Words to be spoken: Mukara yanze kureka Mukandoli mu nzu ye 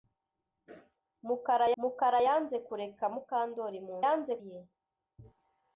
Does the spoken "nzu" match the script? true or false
false